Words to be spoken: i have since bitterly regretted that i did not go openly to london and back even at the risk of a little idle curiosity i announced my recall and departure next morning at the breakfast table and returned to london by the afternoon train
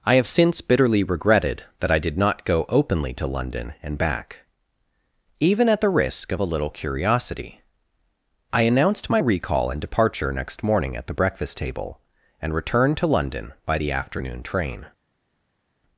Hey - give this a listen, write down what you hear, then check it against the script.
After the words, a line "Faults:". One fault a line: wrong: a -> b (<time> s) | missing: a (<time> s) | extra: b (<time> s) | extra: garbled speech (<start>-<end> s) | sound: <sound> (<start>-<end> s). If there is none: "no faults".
i have since bitterly regretted that i did not go openly to london and back even at the risk of a little curiosity i announced my recall and departure next morning at the breakfast table and returned to london by the afternoon train
Faults:
missing: idle (6.7 s)